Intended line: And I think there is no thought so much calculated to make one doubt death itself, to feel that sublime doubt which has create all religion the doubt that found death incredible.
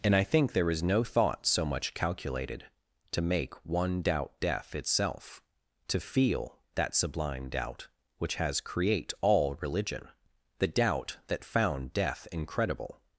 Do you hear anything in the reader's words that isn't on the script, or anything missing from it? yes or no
no